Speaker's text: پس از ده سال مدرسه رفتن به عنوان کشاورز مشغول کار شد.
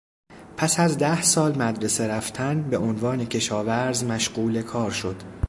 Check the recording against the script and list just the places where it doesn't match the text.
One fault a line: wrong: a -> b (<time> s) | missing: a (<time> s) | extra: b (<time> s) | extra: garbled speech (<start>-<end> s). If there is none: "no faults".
no faults